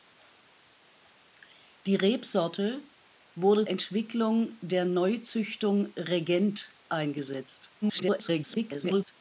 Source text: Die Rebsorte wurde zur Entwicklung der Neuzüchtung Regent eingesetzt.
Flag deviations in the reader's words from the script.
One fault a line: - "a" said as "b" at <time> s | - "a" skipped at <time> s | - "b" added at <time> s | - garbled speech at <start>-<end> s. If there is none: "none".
- "zur" skipped at 3.7 s
- garbled speech at 7.8-9.1 s